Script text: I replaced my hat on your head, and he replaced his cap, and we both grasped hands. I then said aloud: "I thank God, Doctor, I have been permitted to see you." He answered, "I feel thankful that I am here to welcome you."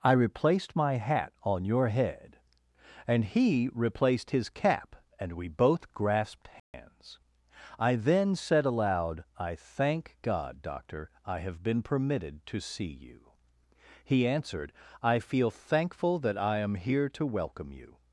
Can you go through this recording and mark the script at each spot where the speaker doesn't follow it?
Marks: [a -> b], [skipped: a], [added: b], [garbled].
I replaced my hat on your head, and he replaced his cap, and we both grasped hands. I then said aloud: "I thank God, Doctor, I have been permitted to see you." He answered, "I feel thankful that I am here to welcome you."